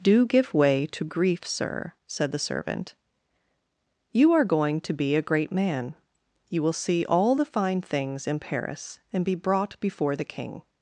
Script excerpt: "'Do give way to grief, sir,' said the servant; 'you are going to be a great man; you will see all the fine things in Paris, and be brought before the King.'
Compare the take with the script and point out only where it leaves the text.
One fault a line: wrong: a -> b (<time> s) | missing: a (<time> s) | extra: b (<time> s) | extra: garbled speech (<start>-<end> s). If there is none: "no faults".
no faults